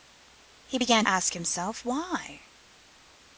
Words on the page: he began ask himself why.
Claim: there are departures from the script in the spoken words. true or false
false